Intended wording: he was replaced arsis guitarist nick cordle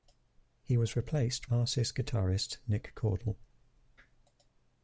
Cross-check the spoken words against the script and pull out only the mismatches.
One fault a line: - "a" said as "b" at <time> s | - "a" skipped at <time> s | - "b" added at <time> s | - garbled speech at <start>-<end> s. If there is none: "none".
none